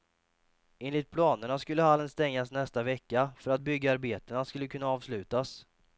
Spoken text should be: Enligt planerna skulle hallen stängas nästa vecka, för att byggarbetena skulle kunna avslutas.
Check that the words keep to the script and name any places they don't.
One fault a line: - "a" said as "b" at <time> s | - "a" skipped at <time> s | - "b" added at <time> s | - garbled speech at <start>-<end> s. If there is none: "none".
none